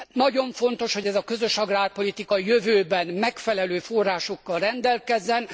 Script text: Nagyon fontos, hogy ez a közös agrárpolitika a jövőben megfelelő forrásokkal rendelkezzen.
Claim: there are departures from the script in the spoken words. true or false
false